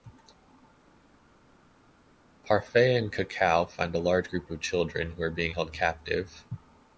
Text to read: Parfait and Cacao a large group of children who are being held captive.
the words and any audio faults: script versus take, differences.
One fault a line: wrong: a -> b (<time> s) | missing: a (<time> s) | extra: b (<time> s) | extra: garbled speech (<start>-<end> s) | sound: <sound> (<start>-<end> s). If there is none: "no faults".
extra: find (3.7 s)